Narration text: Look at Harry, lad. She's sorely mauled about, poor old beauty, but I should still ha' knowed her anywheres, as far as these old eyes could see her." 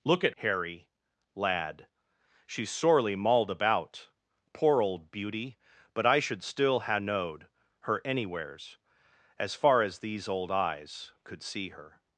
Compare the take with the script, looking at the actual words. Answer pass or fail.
pass